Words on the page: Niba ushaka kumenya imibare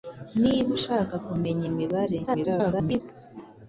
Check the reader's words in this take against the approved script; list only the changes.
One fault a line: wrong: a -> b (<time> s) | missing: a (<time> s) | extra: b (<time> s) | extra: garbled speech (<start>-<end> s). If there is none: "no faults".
extra: garbled speech (2.3-3.0 s)